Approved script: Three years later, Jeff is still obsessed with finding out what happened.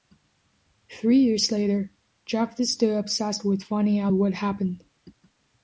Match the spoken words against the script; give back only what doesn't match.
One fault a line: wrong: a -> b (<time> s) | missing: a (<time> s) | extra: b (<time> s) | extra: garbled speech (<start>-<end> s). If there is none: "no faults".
no faults